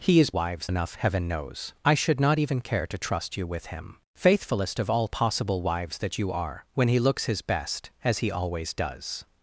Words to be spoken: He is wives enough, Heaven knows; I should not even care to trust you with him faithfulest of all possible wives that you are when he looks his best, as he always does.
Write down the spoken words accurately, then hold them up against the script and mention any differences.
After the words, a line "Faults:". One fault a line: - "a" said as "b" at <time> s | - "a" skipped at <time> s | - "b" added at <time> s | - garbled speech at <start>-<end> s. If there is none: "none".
He is wives enough, Heaven knows; I should not even care to trust you with him faithfulest of all possible wives that you are when he looks his best, as he always does.
Faults:
none